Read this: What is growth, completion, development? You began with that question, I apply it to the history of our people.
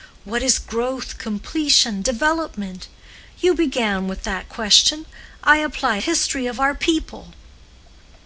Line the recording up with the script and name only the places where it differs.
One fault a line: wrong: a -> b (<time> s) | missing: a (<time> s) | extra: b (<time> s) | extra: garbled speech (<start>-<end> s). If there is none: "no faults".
missing: it to the (6.0 s)